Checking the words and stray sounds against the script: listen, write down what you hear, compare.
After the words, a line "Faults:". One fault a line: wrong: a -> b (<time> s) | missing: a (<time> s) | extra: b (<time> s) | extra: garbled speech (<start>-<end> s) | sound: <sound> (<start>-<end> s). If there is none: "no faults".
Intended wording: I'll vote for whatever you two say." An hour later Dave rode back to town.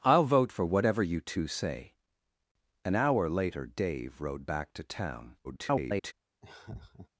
I'll vote for whatever you two say." An hour later Dave rode back to town. [garbled]
Faults:
extra: garbled speech (5.4-6.1 s)
sound: laugh (6.4-7.1 s)